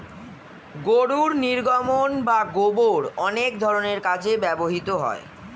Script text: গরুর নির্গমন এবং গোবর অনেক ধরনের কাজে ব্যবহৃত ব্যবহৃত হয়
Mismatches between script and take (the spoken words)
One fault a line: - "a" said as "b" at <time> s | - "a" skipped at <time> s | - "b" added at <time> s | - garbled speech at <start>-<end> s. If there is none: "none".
- "এবং" said as "বা" at 2.2 s
- "ব্যবহৃত" skipped at 4.9 s